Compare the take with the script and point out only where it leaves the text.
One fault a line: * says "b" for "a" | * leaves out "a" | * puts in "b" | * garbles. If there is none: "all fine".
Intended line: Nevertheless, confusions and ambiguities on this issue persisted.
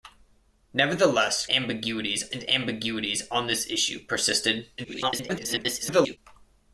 * says "ambiguities" for "confusions"
* garbles